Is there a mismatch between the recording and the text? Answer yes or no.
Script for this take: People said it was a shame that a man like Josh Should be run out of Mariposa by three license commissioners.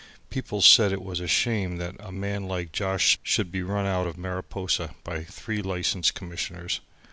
no